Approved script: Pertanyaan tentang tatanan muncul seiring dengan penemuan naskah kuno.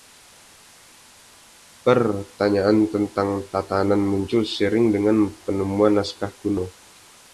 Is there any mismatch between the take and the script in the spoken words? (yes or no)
no